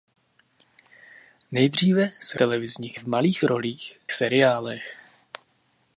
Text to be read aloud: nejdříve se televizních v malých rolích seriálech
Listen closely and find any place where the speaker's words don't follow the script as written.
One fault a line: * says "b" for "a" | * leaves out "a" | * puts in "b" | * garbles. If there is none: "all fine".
all fine